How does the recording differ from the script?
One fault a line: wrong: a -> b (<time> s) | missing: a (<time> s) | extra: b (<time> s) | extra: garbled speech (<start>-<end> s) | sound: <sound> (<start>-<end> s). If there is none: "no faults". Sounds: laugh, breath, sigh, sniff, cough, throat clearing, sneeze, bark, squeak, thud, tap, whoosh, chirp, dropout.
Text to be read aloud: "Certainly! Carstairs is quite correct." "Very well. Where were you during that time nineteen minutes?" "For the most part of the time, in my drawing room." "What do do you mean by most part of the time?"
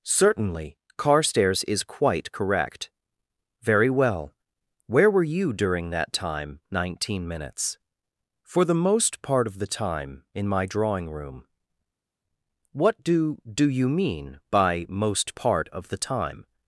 no faults